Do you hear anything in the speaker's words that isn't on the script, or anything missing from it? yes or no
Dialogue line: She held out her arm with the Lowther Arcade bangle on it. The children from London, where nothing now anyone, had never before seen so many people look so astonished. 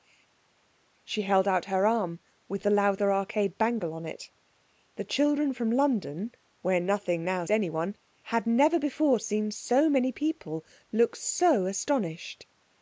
no